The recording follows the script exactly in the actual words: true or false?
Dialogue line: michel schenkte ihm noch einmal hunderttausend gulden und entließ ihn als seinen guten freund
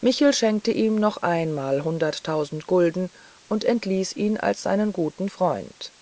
true